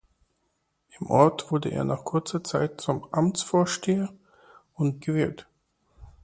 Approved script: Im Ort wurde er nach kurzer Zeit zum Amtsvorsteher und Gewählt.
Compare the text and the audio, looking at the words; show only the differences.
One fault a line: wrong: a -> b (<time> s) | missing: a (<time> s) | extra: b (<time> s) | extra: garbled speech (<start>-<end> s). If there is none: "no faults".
no faults